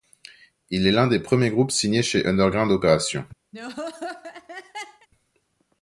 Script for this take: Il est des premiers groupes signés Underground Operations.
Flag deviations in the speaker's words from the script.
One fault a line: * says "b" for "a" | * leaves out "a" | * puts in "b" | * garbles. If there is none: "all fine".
* puts in "l'un"
* puts in "chez"